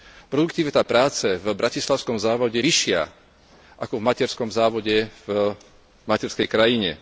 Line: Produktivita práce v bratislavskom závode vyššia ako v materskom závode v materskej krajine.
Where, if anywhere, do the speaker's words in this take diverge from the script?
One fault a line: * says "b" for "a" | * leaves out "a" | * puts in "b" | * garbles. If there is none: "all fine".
all fine